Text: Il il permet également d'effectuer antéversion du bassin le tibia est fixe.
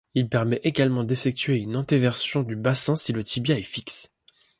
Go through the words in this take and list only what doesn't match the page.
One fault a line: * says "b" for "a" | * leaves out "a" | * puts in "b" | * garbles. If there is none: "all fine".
* leaves out "il"
* puts in "une"
* puts in "si"